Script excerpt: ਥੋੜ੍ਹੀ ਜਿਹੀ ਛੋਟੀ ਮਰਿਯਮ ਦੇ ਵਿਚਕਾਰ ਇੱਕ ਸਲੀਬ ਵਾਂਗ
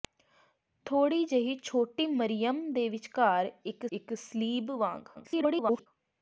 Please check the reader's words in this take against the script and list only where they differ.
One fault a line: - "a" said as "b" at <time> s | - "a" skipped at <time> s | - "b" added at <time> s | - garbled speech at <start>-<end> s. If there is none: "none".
- "ਇੱਕ" added at 3.9 s
- garbled speech at 5.1-5.9 s